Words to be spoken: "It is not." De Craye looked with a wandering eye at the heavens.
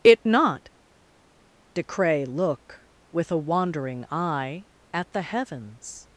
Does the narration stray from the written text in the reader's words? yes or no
yes